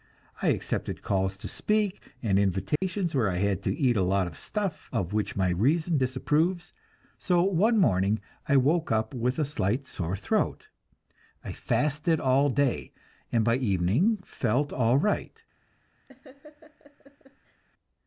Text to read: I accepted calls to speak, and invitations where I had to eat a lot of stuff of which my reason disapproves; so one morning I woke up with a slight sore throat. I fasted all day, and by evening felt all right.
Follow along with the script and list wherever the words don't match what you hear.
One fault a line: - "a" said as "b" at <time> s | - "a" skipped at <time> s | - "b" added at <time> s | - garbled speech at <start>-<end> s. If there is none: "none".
none